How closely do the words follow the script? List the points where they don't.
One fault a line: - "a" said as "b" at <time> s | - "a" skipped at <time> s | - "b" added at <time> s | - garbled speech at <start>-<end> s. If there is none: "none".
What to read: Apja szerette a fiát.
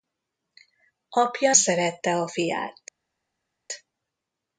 none